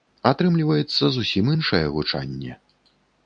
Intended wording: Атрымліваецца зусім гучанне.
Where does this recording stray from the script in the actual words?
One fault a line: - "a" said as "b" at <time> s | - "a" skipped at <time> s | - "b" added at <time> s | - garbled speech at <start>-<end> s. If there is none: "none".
- "іншае" added at 1.5 s